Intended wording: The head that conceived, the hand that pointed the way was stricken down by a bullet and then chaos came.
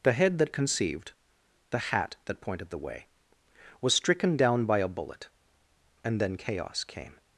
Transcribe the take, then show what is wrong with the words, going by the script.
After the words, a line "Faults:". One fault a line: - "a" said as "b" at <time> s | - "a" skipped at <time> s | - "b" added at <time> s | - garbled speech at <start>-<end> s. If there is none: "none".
The head that conceived, the hat that pointed the way was stricken down by a bullet and then chaos came.
Faults:
- "hand" said as "hat" at 1.8 s